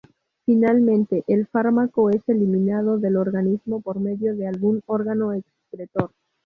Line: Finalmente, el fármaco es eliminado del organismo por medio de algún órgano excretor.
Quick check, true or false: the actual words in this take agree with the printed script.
true